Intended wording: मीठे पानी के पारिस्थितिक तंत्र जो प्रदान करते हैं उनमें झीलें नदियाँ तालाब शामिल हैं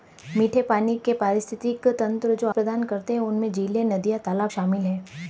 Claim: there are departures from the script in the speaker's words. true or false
false